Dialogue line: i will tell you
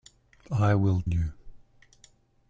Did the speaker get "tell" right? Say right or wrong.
wrong